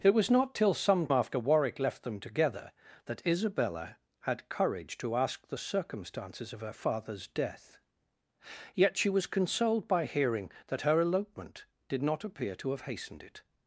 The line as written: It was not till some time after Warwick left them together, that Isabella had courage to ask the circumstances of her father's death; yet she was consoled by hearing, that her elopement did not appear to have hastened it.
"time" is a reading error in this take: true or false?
true